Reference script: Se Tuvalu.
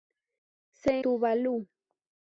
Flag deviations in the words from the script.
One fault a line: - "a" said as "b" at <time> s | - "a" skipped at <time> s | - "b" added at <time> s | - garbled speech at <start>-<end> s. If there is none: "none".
none